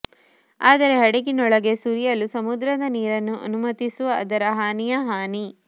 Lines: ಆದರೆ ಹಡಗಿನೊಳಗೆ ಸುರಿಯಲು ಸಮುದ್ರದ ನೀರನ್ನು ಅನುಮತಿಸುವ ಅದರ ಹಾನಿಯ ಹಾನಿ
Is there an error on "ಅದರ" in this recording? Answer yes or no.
no